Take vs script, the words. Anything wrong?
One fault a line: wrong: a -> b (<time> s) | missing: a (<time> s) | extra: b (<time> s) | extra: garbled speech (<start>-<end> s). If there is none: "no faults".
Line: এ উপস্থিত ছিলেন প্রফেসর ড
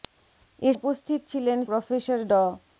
no faults